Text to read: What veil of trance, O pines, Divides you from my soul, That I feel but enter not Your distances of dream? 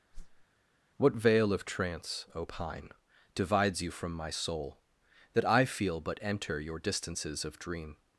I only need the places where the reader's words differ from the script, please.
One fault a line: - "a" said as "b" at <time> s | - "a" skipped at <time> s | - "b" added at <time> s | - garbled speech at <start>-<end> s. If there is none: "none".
- "pines" said as "pine" at 2.4 s
- "not" skipped at 6.6 s